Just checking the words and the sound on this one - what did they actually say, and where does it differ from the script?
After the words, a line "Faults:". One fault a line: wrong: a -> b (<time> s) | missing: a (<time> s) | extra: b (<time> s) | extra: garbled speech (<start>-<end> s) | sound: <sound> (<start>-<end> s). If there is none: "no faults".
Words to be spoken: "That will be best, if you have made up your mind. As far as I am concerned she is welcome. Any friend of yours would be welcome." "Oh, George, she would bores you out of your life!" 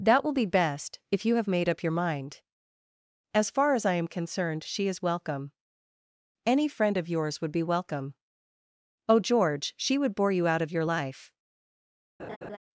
"That will be best, if you have made up your mind. As far as I am concerned she is welcome. Any friend of yours would be welcome." "Oh, George, she would bore you out of your life!"
Faults:
wrong: bores -> bore (10.2 s)
sound: laugh (12.2-12.6 s)